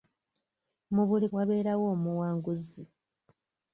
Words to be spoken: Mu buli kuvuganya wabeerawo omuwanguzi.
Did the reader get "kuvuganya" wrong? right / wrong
wrong